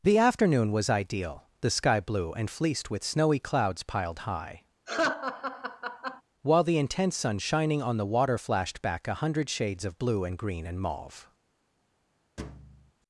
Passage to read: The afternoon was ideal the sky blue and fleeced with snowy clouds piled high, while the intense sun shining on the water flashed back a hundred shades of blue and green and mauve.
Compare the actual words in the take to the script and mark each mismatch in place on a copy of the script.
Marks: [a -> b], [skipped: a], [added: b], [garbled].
The afternoon was ideal the sky blue and fleeced with snowy clouds piled high, while the intense sun shining on the water flashed back a hundred shades of blue and green and mauve.